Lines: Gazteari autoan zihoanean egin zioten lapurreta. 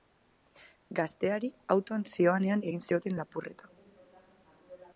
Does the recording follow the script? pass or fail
pass